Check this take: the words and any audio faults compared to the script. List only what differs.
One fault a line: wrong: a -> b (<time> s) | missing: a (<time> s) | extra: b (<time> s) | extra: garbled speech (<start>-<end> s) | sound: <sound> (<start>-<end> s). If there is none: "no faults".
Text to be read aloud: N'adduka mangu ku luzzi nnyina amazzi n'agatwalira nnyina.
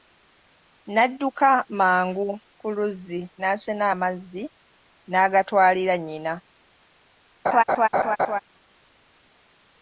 wrong: nnyina -> n'asena (3.4 s)
sound: laugh (7.5-8.4 s)